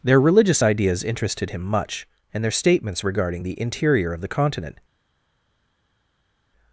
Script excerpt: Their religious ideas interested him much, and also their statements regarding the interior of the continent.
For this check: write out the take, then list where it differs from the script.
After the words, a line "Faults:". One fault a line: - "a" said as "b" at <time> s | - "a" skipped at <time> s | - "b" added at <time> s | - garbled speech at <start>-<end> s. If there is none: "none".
Their religious ideas interested him much, and their statements regarding the interior of the continent.
Faults:
- "also" skipped at 2.4 s